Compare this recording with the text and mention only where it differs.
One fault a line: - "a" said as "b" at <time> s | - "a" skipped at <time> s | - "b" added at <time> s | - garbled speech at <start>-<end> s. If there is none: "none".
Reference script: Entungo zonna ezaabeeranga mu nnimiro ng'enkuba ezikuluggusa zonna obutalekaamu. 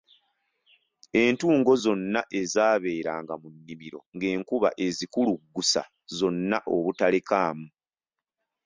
none